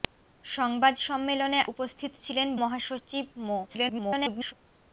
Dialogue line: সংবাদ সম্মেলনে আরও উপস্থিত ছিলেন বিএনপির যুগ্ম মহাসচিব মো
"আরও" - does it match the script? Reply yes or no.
no